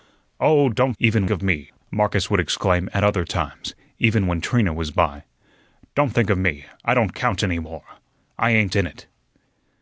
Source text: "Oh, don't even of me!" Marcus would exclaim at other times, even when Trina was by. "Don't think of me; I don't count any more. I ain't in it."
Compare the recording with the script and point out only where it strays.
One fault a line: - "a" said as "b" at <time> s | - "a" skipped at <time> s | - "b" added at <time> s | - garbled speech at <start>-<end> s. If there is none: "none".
none